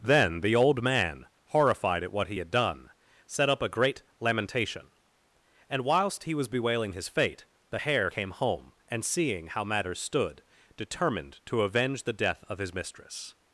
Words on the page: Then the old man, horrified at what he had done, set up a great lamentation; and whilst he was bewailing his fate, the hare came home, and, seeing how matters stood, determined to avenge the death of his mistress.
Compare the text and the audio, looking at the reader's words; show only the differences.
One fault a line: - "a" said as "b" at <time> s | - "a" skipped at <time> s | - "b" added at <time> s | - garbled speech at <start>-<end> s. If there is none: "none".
none